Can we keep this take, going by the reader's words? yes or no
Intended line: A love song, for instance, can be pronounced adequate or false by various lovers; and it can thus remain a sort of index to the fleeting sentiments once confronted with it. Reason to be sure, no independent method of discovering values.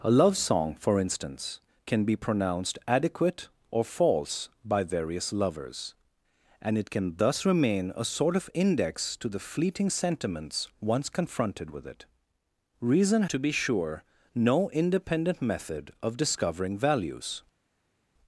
yes